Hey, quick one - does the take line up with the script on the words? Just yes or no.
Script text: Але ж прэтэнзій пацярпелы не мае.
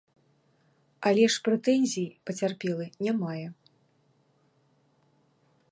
yes